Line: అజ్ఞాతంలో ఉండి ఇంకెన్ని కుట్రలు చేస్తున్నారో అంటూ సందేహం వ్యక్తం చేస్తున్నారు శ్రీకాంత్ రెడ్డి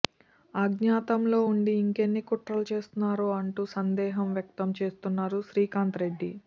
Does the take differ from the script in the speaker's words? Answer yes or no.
no